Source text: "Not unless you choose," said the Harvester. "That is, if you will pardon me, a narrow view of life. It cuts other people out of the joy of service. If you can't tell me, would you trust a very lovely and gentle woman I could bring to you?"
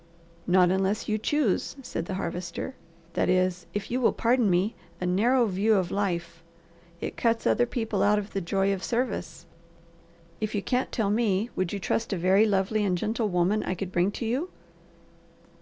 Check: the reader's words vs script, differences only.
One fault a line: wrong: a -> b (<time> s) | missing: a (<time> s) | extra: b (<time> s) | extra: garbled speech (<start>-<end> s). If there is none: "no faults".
no faults